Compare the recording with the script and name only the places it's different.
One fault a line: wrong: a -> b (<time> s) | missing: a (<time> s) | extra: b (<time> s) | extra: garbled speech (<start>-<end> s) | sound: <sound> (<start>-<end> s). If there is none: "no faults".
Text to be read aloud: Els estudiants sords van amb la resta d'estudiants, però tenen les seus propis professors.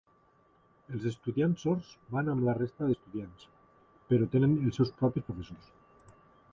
wrong: les -> els (4.6 s)